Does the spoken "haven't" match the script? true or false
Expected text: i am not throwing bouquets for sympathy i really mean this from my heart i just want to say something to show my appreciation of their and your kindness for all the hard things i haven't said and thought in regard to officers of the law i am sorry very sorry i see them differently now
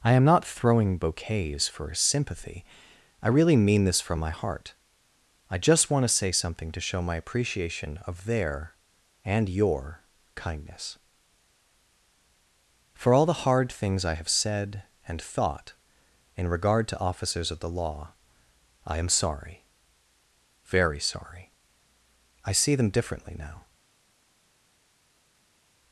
false